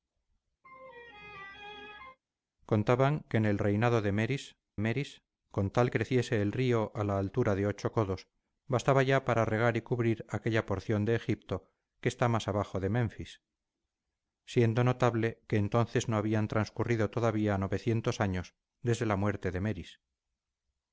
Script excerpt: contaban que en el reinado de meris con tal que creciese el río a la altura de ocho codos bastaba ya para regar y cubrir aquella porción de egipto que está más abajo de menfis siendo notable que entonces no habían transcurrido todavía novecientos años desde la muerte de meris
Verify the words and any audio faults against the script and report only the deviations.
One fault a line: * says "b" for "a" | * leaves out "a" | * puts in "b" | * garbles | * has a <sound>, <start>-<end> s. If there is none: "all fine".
* has a laugh, 0.6-2.2 s
* puts in "meris"
* leaves out "que"